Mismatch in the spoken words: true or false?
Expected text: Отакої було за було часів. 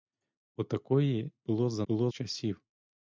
false